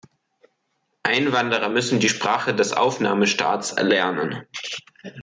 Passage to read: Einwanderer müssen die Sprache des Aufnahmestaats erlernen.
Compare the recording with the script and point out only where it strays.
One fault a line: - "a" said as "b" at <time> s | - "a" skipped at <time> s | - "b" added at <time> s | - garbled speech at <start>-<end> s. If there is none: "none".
none